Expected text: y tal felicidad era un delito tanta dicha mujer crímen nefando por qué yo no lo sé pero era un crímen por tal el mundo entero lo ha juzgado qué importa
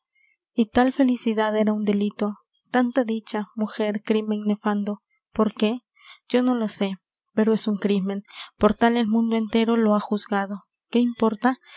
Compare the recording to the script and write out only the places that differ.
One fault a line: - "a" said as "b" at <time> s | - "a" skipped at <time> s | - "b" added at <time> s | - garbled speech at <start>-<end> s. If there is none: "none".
- "era" said as "es" at 7.5 s